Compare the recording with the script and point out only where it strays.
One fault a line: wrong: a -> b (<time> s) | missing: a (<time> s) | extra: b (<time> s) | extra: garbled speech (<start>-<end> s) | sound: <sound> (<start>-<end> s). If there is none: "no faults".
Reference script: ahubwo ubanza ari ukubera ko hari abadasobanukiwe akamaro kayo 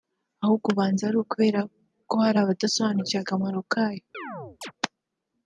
sound: chirp (4.1-4.7 s)